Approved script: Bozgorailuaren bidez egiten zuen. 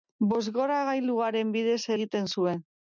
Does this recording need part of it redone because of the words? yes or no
no